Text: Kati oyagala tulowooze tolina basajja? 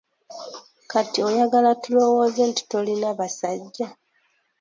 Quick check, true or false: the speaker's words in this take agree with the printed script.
false